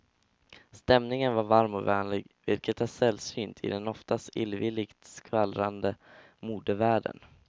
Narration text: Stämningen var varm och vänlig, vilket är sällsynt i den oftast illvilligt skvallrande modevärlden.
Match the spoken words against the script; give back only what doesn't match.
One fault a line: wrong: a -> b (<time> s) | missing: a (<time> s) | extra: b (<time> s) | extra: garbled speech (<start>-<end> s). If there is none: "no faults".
no faults